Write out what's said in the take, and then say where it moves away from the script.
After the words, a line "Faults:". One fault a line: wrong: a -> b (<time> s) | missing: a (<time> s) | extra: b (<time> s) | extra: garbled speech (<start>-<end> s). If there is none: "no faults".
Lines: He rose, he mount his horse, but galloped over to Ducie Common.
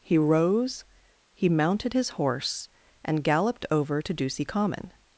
He rose, he mounted his horse, and galloped over to Ducie Common.
Faults:
wrong: mount -> mounted (1.5 s)
wrong: but -> and (3.0 s)